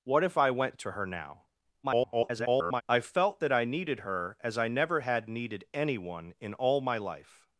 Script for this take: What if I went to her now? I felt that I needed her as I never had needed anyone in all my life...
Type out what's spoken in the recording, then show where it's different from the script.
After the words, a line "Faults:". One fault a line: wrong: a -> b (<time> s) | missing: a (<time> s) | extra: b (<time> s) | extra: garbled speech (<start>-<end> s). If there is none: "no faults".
What if I went to her now? [garbled] I felt that I needed her as I never had needed anyone in all my life...
Faults:
extra: garbled speech (1.8-2.8 s)